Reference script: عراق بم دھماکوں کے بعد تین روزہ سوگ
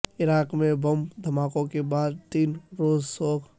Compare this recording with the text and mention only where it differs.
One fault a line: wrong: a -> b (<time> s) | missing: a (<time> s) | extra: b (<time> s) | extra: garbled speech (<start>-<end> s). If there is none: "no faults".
extra: میں (0.6 s)